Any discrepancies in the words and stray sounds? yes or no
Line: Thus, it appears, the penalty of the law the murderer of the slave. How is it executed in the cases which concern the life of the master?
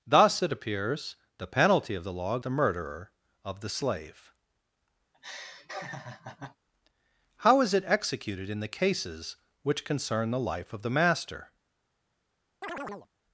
yes